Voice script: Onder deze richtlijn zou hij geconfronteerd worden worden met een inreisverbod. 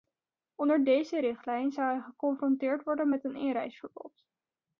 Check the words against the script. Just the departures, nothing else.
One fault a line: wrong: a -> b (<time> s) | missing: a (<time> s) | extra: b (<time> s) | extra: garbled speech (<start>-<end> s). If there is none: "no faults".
missing: worden (3.1 s)